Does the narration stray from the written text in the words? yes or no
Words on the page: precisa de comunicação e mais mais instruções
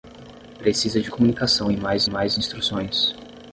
no